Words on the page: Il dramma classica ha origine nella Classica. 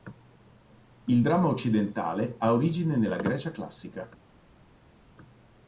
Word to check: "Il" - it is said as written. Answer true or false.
true